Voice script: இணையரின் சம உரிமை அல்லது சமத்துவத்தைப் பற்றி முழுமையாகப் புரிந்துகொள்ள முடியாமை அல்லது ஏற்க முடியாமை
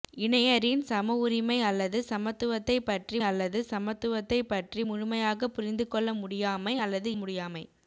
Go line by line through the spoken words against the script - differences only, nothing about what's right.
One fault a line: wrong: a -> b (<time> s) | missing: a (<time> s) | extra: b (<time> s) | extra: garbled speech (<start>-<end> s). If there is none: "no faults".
extra: அல்லது சமத்துவத்தைப் பற்றி (3.2 s)
missing: ஏற்க (7.1 s)